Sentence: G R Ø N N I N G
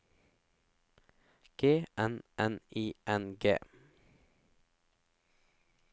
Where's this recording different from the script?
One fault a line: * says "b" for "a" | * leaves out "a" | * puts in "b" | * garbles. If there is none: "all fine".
* leaves out "R Ø"